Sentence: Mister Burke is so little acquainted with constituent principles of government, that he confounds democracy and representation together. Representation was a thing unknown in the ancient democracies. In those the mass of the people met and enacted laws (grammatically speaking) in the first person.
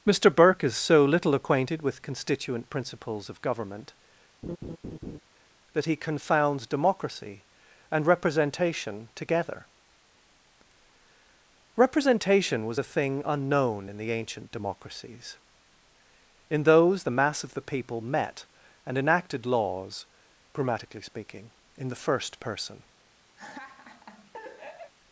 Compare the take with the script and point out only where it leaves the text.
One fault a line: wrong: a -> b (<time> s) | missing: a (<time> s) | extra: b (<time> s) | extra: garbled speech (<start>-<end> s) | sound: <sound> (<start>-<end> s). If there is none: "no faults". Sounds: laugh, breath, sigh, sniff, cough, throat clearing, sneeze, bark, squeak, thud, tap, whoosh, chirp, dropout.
sound: laugh (4.4-5.2 s)
sound: laugh (23.4-24.9 s)